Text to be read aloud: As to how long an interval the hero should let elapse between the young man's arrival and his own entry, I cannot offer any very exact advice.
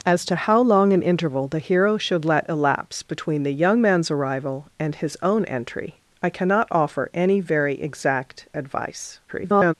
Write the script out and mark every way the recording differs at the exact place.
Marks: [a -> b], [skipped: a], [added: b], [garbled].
As to how long an interval the hero should let elapse between the young man's arrival and his own entry, I cannot offer any very exact advice. [garbled]